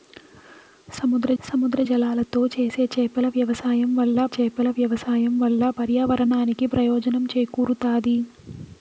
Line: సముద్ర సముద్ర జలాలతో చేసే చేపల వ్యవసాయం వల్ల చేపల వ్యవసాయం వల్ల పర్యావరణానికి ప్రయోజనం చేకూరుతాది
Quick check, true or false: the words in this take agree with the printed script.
true